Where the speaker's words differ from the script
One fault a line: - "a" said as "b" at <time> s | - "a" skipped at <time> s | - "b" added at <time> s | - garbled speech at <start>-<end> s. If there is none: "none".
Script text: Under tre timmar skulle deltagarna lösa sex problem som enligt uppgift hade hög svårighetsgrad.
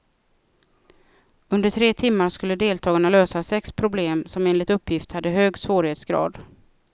none